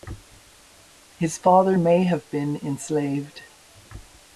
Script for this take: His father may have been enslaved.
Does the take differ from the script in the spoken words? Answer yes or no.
no